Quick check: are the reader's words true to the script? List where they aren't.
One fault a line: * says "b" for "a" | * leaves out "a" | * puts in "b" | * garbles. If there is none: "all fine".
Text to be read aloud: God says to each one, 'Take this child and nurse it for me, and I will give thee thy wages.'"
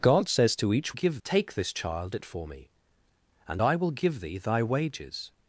* says "give" for "one"
* leaves out "and nurse"